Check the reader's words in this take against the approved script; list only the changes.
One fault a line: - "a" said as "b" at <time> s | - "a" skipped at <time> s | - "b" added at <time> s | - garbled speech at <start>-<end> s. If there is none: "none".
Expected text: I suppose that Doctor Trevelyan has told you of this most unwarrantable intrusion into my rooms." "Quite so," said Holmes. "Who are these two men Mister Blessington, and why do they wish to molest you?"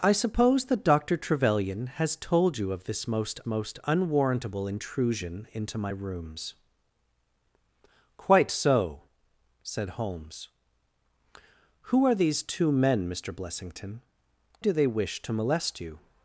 - "most" added at 3.5 s
- "and why" skipped at 14.0 s